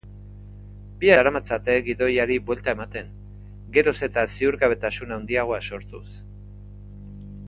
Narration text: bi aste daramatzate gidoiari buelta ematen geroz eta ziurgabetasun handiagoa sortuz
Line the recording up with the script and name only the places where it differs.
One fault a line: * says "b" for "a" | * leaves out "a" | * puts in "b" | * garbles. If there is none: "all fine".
* leaves out "aste"